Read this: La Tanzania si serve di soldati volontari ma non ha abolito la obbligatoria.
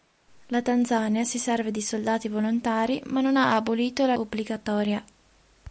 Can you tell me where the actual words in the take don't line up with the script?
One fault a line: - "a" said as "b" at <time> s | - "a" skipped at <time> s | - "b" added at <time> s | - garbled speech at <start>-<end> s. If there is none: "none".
none